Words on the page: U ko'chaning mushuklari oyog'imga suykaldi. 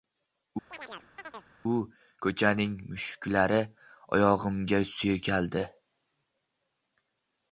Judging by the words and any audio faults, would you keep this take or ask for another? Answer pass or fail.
fail